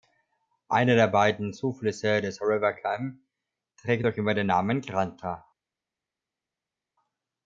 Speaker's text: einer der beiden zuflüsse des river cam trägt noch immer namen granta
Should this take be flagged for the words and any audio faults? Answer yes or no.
yes